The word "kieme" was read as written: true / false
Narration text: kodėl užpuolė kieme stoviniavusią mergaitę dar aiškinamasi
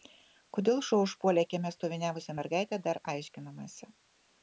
true